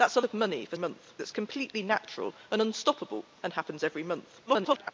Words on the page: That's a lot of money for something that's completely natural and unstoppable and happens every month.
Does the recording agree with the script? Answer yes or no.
no